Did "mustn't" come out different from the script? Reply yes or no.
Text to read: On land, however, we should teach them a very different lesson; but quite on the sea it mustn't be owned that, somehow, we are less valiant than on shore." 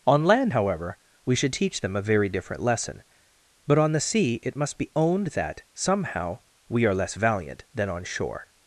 yes